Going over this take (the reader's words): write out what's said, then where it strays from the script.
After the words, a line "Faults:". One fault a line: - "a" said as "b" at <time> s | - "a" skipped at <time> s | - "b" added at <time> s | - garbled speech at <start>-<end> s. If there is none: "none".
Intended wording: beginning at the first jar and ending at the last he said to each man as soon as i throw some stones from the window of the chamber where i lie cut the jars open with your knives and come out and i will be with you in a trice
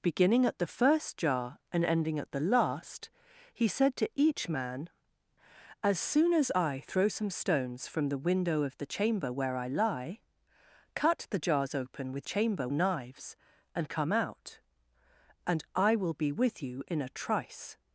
beginning at the first jar and ending at the last he said to each man as soon as i throw some stones from the window of the chamber where i lie cut the jars open with chamber knives and come out and i will be with you in a trice
Faults:
- "your" said as "chamber" at 12.2 s